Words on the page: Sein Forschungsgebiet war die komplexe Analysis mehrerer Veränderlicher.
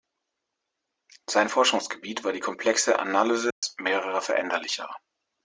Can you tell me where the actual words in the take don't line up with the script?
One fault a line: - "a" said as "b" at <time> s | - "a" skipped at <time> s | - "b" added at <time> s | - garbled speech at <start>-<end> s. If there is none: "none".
none